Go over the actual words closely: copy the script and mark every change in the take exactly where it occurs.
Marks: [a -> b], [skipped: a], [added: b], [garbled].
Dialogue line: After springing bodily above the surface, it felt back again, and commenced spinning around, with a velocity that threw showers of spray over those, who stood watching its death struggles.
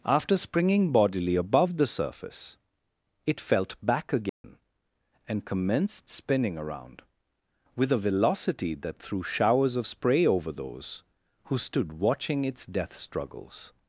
After springing bodily above the surface, it felt back again, and commenced spinning around, with a velocity that threw showers of spray over those, who stood watching its death struggles.